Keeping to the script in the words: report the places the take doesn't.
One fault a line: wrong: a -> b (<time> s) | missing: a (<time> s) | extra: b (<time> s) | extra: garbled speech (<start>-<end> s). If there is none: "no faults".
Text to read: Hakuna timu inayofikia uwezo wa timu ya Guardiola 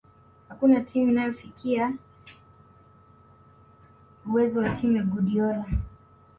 no faults